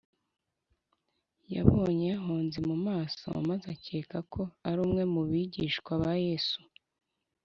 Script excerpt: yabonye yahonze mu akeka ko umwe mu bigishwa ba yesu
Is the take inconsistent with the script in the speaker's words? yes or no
yes